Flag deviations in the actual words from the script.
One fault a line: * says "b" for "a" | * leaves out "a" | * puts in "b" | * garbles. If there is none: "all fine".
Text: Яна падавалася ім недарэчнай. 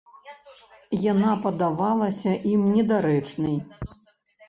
all fine